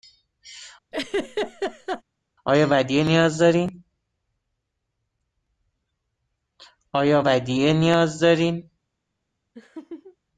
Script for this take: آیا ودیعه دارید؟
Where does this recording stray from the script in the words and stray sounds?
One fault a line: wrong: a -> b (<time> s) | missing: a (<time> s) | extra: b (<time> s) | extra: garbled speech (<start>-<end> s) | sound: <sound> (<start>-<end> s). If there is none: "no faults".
sound: laugh (0.9-2.0 s)
extra: نیاز (7.7 s)
sound: laugh (9.5-10.2 s)